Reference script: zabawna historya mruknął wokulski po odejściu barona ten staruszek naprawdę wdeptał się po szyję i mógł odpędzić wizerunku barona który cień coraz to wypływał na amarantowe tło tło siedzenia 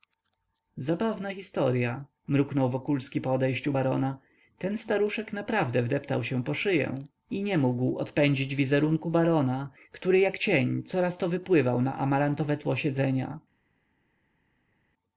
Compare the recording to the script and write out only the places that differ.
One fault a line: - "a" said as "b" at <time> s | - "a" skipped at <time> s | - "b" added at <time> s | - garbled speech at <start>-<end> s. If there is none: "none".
- "nie" added at 7.4 s
- "jak" added at 10.2 s
- "tło" skipped at 12.8 s